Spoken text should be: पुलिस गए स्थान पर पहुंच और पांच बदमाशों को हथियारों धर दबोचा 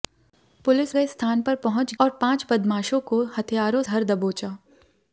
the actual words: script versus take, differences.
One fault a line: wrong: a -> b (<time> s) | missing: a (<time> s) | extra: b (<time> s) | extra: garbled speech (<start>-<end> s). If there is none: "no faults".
no faults